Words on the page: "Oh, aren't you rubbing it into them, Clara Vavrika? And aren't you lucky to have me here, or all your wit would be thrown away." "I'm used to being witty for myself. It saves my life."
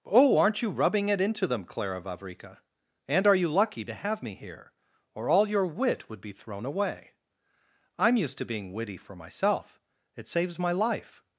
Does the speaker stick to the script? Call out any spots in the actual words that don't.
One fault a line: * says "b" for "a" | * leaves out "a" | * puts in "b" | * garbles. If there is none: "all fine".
* says "are" for "aren't"